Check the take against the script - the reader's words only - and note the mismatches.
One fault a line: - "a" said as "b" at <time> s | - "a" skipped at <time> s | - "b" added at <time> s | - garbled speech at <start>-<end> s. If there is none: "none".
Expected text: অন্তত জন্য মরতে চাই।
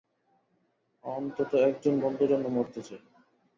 - "একজন বন্ধুর" added at 1.7 s